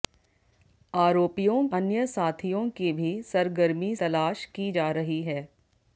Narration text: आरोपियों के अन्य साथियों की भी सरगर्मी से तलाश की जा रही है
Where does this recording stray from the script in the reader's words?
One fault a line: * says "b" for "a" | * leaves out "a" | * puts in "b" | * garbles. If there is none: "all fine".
* leaves out "के"
* leaves out "से"